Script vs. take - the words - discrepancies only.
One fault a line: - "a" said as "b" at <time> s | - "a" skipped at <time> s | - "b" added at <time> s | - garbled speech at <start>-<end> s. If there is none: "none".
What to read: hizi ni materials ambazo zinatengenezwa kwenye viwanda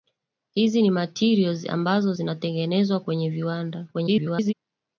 - garbled speech at 3.9-4.5 s